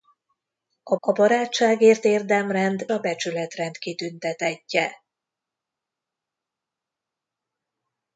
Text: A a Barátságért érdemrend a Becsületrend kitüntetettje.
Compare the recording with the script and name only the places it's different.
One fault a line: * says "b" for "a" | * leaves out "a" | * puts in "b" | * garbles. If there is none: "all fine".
all fine